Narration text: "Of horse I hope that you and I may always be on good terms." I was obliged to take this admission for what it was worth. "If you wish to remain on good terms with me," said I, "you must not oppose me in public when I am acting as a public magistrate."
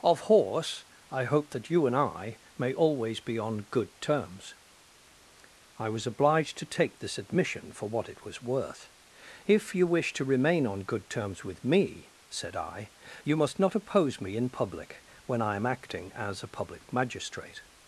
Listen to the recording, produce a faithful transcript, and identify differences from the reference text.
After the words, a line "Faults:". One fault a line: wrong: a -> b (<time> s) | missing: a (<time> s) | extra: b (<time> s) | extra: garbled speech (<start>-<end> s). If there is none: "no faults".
"Of horse I hope that you and I may always be on good terms." I was obliged to take this admission for what it was worth. "If you wish to remain on good terms with me," said I, "you must not oppose me in public when I am acting as a public magistrate."
Faults:
no faults